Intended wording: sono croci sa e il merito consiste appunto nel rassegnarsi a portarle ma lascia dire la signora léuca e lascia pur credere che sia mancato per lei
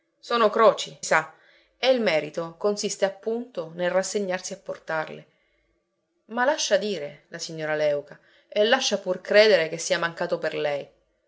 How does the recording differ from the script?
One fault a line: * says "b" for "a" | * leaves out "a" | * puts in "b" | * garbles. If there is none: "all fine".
all fine